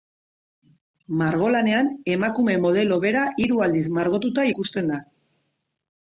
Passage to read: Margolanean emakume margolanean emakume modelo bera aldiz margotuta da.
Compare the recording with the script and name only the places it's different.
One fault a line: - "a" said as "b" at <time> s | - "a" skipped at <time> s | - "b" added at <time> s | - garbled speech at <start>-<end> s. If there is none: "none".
- "margolanean emakume" skipped at 2.6 s
- "hiru" added at 3.5 s
- "ikusten" added at 4.5 s